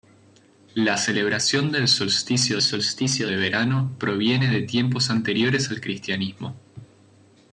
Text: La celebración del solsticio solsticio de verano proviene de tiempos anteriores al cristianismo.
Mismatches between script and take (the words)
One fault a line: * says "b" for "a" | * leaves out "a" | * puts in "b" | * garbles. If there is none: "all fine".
all fine